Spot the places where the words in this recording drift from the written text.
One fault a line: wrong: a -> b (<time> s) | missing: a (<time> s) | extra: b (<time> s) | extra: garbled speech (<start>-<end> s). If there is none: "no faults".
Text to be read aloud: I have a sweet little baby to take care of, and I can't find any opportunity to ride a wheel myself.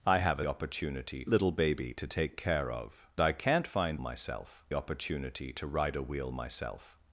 wrong: sweet -> opportunity (0.4 s)
missing: and (3.1 s)
wrong: any -> myself (4.0 s)